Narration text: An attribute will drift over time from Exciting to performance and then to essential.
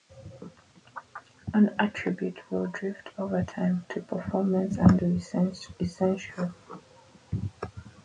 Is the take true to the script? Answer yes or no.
no